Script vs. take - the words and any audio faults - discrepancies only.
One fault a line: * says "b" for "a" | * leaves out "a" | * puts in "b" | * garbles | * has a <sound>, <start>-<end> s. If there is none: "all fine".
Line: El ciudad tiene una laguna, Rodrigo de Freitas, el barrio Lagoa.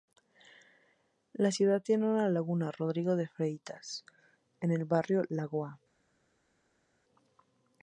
* says "La" for "El"
* puts in "en"